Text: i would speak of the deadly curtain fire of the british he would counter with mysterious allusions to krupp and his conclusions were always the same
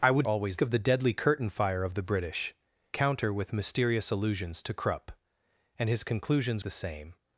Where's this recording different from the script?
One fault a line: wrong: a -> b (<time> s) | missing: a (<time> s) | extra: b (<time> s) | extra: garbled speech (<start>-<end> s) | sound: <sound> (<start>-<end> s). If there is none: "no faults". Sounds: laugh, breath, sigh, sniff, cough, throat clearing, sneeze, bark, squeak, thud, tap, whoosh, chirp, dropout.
wrong: speak -> always (0.3 s)
missing: he would (2.5 s)
missing: were always (6.6 s)